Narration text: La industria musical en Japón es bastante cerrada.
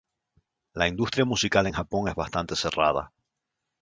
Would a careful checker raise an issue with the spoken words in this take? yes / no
no